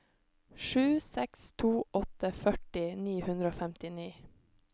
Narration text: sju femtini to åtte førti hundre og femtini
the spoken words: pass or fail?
fail